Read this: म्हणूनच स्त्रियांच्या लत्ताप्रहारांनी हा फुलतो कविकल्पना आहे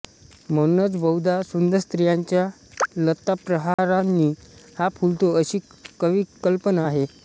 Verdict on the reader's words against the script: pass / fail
fail